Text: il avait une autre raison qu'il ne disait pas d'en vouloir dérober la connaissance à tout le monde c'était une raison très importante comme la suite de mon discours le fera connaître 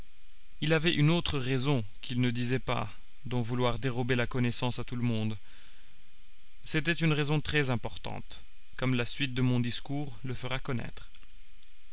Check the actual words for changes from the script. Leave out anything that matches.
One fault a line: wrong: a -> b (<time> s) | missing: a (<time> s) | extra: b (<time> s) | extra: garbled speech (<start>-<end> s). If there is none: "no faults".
no faults